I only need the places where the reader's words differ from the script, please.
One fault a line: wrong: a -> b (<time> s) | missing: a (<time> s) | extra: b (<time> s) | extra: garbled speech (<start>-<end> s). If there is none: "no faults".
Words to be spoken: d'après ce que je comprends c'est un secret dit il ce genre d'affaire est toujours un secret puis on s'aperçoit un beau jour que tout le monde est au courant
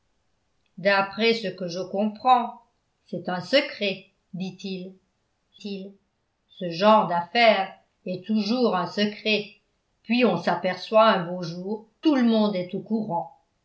extra: il (5.6 s)
missing: que (11.9 s)